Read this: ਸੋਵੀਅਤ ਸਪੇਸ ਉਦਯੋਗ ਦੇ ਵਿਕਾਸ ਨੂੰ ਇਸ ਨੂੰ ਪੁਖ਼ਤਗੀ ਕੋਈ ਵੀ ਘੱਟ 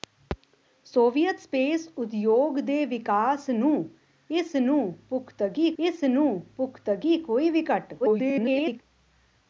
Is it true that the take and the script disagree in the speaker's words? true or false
true